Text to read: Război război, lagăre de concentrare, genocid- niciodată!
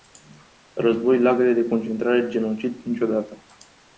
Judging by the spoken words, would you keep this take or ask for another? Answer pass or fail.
fail